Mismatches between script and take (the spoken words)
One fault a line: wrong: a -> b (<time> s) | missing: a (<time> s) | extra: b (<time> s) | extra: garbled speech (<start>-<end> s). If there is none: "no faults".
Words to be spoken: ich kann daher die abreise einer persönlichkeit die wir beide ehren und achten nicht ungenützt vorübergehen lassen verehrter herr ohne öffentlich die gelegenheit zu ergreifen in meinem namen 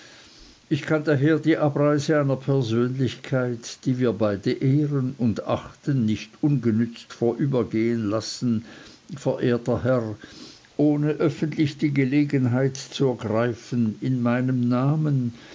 no faults